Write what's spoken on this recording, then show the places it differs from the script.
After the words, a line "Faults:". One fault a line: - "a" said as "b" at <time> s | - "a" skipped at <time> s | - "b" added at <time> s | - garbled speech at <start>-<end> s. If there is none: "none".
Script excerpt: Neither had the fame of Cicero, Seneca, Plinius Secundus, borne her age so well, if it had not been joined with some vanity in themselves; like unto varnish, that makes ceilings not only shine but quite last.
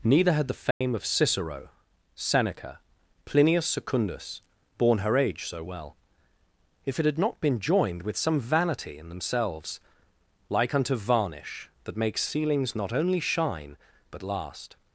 Neither had the fame of Cicero, Seneca, Plinius Secundus, borne her age so well, if it had not been joined with some vanity in themselves; like unto varnish, that makes ceilings not only shine but last.
Faults:
- "quite" skipped at 14.2 s